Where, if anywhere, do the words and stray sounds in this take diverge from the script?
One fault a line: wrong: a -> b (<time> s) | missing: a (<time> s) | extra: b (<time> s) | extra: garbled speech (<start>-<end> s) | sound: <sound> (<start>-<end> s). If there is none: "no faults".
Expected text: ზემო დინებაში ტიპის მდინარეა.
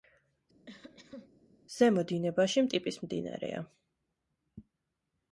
sound: cough (0.7-1.3 s)